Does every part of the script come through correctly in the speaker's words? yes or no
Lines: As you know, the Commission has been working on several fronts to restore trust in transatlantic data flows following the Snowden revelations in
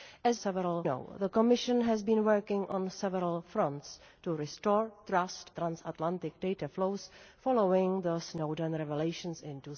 no